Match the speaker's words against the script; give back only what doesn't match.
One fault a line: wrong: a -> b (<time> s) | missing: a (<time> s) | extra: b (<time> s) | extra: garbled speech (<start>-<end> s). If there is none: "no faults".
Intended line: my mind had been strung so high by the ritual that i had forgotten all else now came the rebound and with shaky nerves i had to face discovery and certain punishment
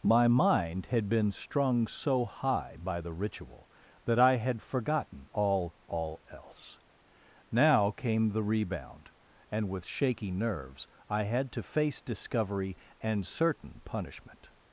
extra: all (5.9 s)